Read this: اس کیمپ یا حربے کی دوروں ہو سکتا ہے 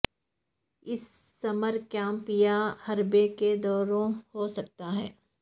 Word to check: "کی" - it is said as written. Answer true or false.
false